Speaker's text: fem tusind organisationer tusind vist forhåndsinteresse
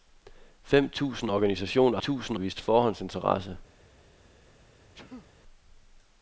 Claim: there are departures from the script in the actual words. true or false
false